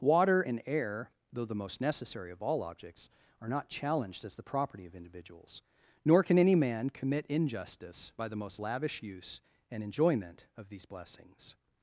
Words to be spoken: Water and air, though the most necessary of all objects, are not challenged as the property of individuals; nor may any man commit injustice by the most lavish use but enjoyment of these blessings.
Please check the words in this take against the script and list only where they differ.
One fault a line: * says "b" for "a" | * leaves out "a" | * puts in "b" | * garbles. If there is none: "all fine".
* says "can" for "may"
* says "and" for "but"